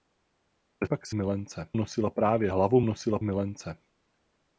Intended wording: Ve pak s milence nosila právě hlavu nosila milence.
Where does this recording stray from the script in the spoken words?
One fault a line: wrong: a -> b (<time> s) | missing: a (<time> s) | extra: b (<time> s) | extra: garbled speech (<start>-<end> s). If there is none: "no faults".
no faults